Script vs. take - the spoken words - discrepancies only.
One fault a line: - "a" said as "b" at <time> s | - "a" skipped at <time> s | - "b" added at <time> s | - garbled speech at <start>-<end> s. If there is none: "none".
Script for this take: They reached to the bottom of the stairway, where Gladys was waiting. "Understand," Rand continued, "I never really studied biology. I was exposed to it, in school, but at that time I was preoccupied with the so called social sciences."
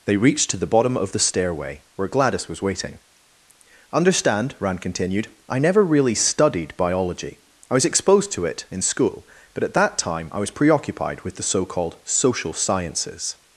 none